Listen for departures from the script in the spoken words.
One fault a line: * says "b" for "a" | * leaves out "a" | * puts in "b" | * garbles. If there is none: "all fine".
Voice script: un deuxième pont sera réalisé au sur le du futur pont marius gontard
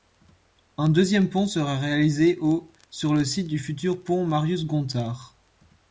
* puts in "site"